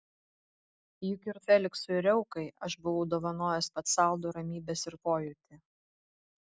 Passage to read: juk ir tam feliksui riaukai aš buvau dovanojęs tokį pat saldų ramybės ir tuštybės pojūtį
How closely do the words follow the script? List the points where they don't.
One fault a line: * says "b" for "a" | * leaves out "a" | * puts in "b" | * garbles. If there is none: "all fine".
* leaves out "tam"
* leaves out "tokį"
* leaves out "tuštybės"